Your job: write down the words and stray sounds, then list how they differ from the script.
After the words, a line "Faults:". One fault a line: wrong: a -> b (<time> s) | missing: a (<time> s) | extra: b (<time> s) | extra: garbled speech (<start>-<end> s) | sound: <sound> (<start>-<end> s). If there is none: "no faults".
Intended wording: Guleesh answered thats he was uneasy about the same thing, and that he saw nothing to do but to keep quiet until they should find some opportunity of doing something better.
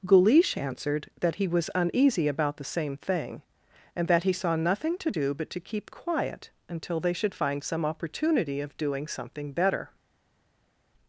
Guleesh answered that he was uneasy about the same thing, and that he saw nothing to do but to keep quiet until they should find some opportunity of doing something better.
Faults:
wrong: thats -> that (1.2 s)